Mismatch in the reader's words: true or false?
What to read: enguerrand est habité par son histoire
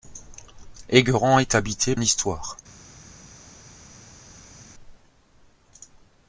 true